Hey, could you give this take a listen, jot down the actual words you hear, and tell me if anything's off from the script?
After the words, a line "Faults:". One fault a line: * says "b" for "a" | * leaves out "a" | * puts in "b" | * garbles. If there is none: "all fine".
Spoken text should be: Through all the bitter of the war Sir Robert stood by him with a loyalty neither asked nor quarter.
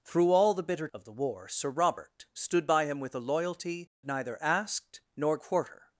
Through all the bitter of the war Sir Robert stood by him with a loyalty neither asked nor quarter.
Faults:
all fine